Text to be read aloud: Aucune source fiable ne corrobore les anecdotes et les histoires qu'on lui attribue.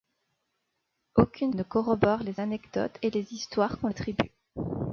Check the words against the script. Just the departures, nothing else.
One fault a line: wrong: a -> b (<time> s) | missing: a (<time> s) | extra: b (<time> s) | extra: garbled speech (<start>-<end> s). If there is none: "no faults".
missing: source fiable (1.5 s)
missing: lui (3.9 s)